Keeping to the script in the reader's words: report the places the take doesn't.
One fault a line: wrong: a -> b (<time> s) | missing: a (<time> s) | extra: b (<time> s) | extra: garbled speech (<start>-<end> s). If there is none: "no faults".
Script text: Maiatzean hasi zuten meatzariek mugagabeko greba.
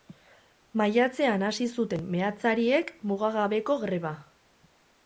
no faults